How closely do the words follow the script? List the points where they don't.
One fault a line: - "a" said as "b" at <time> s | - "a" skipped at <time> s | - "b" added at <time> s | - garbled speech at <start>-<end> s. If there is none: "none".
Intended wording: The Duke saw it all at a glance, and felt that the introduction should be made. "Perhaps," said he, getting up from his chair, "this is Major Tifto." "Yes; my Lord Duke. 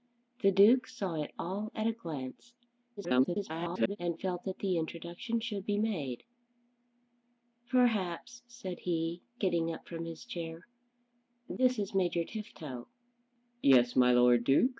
- garbled speech at 3.0-4.0 s